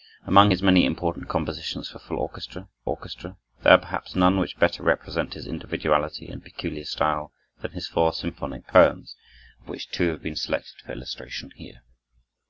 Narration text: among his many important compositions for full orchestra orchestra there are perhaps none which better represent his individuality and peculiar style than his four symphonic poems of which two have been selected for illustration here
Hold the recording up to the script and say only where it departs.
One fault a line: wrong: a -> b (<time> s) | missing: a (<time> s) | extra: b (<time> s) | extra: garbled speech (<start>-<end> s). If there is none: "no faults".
no faults